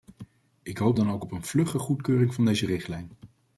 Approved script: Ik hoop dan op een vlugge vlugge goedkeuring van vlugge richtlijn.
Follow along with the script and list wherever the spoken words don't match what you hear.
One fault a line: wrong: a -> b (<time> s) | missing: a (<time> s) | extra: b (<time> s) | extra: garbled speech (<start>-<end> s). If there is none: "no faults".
extra: ook (1.1 s)
missing: vlugge (1.8 s)
wrong: vlugge -> deze (2.4 s)